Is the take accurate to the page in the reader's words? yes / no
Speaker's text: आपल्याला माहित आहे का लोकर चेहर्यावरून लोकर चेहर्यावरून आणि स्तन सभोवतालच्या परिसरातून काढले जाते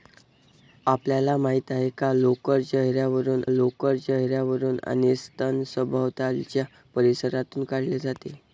yes